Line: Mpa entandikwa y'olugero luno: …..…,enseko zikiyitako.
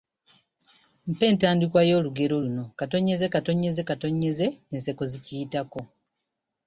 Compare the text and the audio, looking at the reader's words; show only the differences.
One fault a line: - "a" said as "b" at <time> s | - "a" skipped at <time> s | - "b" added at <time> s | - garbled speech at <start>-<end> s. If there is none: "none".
none